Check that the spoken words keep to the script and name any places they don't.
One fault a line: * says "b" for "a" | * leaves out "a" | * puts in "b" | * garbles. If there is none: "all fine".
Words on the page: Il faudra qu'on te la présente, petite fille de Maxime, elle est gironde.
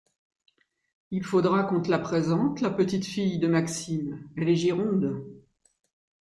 * puts in "la"